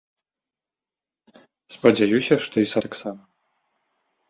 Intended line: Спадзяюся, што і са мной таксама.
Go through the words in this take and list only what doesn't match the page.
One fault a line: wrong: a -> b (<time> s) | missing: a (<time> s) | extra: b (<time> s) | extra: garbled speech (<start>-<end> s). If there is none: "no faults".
missing: мной (2.8 s)